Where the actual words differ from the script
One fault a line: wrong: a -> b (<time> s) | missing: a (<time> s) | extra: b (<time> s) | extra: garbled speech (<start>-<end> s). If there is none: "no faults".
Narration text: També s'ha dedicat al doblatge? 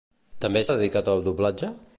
missing: s'ha (0.6 s)